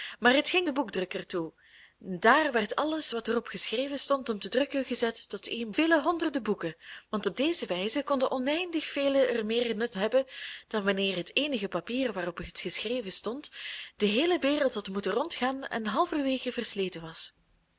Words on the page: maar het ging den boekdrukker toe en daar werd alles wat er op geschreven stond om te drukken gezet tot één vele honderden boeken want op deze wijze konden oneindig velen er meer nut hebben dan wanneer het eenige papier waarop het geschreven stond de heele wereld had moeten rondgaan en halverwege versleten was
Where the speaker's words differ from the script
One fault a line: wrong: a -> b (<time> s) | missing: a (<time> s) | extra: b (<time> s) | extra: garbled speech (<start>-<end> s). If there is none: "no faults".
no faults